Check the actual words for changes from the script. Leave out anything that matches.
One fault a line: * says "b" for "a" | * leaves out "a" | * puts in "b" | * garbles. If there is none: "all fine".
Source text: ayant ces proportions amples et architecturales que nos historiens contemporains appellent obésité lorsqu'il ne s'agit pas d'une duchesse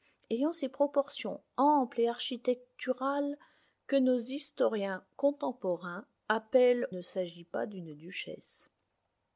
* leaves out "obésité lorsqu'il"